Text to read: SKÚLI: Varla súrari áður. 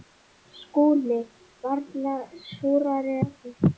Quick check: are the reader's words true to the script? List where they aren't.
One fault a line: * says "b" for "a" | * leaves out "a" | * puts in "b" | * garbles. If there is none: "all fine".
all fine